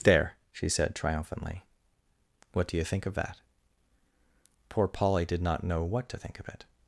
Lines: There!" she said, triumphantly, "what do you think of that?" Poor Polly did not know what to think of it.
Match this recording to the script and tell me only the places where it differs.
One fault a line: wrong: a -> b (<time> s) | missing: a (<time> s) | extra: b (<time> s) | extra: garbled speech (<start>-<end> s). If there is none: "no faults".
no faults